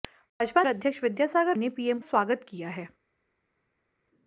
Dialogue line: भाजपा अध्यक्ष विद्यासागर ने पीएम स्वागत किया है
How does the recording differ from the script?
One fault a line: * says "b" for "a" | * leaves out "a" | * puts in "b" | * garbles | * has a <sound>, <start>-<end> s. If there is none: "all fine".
all fine